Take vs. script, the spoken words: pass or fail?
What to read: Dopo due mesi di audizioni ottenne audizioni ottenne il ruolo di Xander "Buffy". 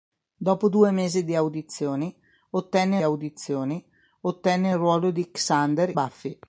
pass